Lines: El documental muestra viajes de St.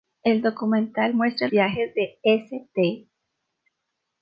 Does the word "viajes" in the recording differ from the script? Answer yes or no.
no